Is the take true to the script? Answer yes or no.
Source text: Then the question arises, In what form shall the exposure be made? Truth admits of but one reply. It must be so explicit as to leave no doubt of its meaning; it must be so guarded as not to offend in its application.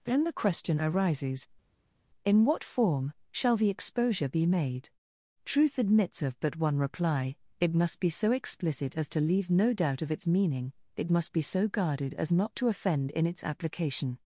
yes